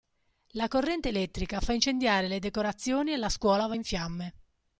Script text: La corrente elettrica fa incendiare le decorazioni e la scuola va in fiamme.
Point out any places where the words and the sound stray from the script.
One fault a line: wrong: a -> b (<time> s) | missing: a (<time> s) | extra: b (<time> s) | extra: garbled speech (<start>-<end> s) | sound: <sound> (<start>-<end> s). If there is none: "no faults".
no faults